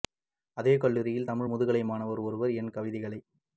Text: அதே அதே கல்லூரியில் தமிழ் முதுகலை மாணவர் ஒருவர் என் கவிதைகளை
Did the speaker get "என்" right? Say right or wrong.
right